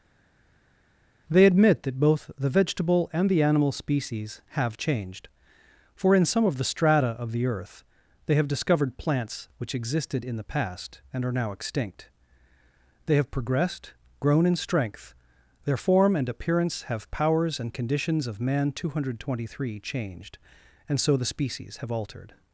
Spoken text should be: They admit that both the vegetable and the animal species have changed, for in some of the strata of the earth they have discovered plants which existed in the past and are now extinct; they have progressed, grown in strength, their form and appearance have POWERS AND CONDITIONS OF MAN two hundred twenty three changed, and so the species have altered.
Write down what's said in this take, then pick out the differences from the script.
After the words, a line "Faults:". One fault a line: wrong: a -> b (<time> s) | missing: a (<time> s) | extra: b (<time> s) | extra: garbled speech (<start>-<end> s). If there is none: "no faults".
They admit that both the vegetable and the animal species have changed, for in some of the strata of the earth they have discovered plants which existed in the past and are now extinct; they have progressed, grown in strength, their form and appearance have POWERS AND CONDITIONS OF MAN two hundred twenty three changed, and so the species have altered.
Faults:
no faults